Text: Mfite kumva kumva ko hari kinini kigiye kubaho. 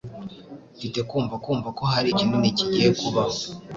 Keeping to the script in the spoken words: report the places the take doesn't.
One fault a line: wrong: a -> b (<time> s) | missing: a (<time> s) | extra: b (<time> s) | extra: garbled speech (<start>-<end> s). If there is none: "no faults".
no faults